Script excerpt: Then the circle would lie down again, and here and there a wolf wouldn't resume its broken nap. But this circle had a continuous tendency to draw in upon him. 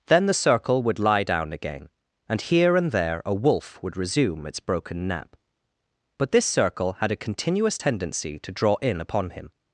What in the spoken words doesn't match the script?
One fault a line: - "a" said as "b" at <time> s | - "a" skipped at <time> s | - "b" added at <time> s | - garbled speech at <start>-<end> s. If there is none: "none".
- "wouldn't" said as "would" at 3.8 s